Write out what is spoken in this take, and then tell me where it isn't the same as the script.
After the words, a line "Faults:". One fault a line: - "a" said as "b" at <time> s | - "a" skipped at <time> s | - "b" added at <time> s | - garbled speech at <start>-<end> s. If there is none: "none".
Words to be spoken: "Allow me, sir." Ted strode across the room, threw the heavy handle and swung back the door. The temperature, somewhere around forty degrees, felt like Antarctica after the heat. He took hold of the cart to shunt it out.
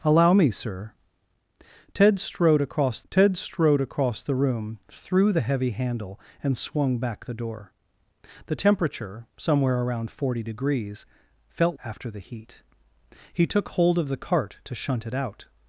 "Allow me, sir." Ted strode across ted strode across the room, threw the heavy handle and swung back the door. The temperature, somewhere around forty degrees, felt after the heat. He took hold of the cart to shunt it out.
Faults:
- "ted strode across" added at 3.1 s
- "like Antarctica" skipped at 11.8 s